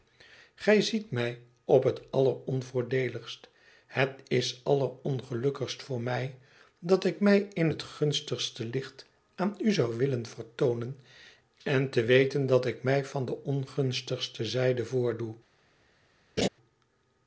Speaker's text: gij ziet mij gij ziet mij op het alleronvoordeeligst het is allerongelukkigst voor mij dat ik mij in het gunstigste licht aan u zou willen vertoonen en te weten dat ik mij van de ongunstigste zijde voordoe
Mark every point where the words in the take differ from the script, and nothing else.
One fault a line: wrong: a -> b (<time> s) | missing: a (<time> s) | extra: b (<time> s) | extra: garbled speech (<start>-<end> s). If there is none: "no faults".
missing: gij ziet mij (1.4 s)